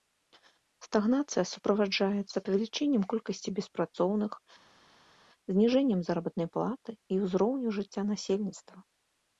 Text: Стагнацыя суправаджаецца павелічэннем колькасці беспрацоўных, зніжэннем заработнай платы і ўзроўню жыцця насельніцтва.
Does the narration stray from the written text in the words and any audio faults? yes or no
no